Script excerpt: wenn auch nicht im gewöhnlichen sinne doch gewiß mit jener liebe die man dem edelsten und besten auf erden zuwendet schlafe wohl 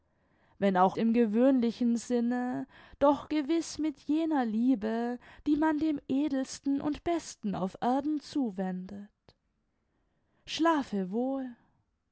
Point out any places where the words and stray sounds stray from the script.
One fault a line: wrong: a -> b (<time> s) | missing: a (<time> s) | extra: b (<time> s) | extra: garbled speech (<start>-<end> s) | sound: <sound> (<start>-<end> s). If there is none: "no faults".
missing: nicht (1.0 s)